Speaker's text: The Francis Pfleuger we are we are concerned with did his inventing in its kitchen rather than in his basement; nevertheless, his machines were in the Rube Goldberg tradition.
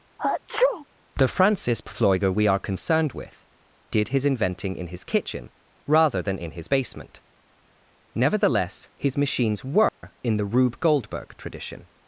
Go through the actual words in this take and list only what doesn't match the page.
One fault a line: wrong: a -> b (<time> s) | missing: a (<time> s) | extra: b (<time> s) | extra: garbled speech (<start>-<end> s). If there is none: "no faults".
missing: we are (2.6 s)
wrong: its -> his (4.9 s)